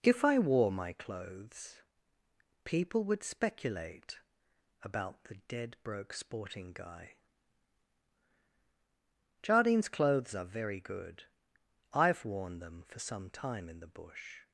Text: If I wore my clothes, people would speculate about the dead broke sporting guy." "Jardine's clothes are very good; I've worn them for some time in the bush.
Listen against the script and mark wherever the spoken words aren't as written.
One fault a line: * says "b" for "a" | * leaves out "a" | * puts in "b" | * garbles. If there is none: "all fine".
all fine